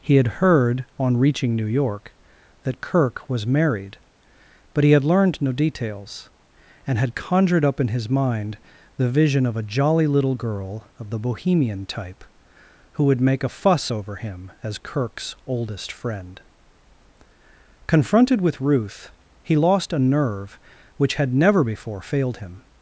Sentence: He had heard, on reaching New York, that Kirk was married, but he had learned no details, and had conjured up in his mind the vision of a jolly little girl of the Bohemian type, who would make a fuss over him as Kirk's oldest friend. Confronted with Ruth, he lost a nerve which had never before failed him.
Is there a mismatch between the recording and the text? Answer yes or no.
no